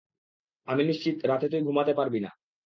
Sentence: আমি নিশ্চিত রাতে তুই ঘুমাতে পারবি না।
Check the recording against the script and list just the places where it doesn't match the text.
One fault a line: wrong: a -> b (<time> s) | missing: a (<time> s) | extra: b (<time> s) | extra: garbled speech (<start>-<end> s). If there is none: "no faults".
no faults